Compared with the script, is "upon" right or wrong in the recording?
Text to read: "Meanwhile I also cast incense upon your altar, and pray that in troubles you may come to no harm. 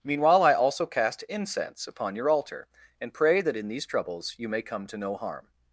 right